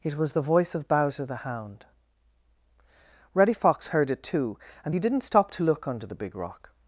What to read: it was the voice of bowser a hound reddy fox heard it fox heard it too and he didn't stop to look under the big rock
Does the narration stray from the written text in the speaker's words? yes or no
yes